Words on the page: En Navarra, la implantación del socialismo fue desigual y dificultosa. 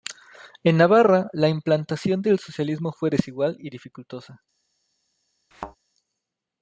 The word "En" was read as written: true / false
true